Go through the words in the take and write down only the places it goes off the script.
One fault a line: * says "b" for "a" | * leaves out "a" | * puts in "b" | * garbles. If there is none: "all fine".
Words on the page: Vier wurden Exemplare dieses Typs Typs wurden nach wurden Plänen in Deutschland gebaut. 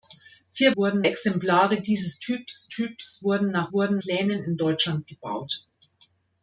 all fine